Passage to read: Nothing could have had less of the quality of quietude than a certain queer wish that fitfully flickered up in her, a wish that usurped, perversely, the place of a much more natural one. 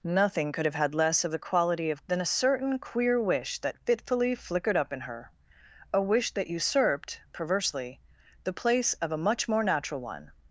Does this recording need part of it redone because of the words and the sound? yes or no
yes